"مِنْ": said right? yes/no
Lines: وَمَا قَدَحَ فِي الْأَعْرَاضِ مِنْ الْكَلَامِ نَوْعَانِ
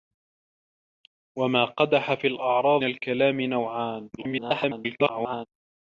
no